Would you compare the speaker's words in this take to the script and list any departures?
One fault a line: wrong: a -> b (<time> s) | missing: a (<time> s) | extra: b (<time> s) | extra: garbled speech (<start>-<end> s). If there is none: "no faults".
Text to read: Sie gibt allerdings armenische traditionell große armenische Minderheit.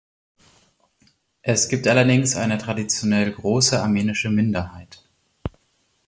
wrong: Sie -> Es (1.4 s)
wrong: armenische -> eine (2.4 s)